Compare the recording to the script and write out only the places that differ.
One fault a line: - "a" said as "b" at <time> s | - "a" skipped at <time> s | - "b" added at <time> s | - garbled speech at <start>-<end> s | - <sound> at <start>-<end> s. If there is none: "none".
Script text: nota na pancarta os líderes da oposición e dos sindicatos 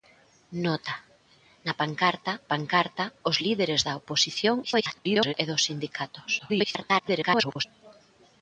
- "pancarta" added at 2.5 s
- garbled speech at 4.6-5.3 s
- garbled speech at 6.4-7.6 s